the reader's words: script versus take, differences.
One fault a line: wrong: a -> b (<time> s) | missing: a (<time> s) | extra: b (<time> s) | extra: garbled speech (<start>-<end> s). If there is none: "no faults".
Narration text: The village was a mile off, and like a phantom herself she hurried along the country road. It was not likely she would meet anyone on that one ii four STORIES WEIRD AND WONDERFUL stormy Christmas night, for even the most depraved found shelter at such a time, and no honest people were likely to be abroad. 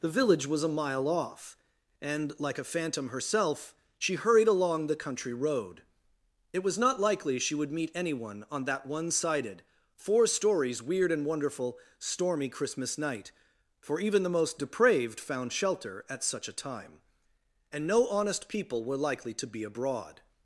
wrong: ii -> sided (9.1 s)